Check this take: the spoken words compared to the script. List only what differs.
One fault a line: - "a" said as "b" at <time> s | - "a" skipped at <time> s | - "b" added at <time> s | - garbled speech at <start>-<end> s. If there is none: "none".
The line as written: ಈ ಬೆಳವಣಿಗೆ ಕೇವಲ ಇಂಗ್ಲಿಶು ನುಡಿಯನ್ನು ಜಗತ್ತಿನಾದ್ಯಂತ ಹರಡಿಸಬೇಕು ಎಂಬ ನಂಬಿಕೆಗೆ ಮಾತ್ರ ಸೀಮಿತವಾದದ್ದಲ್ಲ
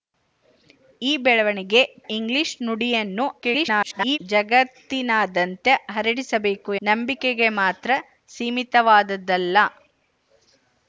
- "ಕೇವಲ" skipped at 1.8 s
- garbled speech at 3.4-4.2 s
- "ಎಂಬ" skipped at 6.7 s